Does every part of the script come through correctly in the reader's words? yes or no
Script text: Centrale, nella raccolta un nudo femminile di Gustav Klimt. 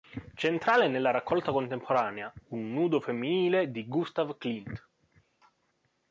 no